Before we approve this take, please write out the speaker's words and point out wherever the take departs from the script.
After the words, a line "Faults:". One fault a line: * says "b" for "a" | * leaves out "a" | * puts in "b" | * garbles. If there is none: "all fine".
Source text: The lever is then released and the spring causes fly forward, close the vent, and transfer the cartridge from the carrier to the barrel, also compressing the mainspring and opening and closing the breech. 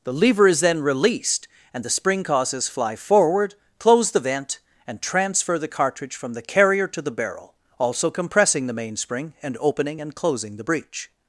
The lever is then released and the spring causes fly forward, close the vent, and transfer the cartridge from the carrier to the barrel, also compressing the mainspring and opening and closing the breech.
Faults:
all fine